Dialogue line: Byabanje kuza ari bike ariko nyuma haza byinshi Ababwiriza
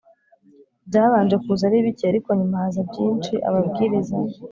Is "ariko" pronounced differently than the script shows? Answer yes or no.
no